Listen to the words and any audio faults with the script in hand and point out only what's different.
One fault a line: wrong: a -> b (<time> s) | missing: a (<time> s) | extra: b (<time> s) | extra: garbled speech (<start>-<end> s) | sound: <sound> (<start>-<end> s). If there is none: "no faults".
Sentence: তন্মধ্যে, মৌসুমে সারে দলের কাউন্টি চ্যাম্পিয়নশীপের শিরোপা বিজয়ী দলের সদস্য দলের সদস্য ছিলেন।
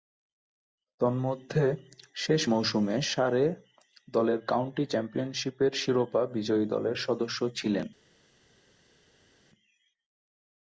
extra: শেষ (2.1 s)
missing: দলের সদস্য (7.4 s)